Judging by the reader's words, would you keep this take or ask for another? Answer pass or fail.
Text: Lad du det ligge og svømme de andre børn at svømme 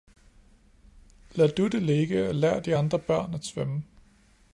fail